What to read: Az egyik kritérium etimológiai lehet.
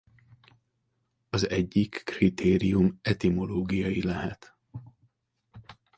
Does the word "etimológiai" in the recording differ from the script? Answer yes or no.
no